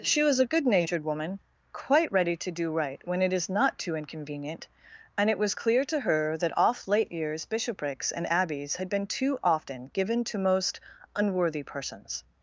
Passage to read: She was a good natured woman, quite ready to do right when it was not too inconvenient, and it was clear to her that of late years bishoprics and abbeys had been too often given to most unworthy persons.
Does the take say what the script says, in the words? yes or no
no